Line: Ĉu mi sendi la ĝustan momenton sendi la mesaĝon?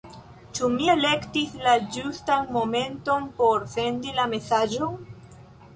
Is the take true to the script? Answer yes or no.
no